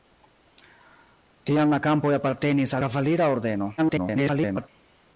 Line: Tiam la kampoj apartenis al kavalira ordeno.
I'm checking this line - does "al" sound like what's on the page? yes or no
no